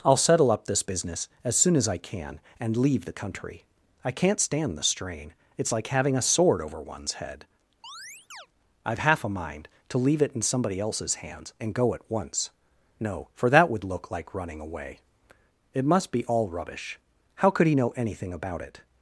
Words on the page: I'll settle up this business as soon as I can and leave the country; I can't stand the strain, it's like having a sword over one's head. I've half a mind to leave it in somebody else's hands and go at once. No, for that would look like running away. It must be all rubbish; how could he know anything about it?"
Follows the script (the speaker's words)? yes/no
yes